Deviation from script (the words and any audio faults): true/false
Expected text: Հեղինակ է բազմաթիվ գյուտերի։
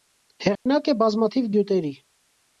true